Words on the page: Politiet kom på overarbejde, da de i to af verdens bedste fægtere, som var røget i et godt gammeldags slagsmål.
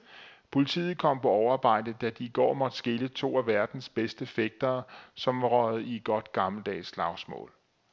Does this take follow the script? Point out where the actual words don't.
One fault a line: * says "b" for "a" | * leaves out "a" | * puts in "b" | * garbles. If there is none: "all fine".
* puts in "går måtte skille"